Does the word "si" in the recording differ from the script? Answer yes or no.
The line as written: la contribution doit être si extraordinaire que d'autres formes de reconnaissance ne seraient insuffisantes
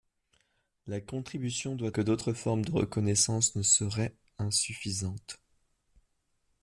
yes